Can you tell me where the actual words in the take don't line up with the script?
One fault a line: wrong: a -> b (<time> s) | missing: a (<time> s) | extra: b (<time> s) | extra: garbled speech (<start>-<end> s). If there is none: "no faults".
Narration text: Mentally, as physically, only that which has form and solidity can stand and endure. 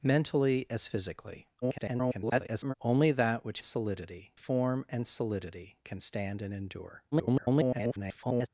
extra: garbled speech (1.6-2.7 s)
wrong: has -> solidity (3.6 s)
extra: garbled speech (7.1-8.5 s)